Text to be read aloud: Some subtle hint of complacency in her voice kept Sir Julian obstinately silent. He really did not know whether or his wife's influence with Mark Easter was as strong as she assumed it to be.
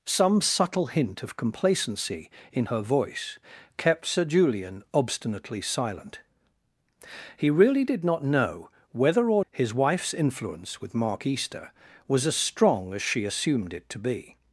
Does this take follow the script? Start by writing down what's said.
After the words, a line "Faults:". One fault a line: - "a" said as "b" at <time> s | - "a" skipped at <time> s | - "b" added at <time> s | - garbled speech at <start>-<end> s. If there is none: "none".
Some subtle hint of complacency in her voice kept Sir Julian obstinately silent. He really did not know whether or his wife's influence with Mark Easter was as strong as she assumed it to be.
Faults:
none